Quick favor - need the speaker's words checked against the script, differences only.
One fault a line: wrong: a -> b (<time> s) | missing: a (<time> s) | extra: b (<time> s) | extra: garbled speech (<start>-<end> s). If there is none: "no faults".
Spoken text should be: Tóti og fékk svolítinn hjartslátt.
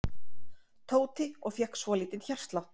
no faults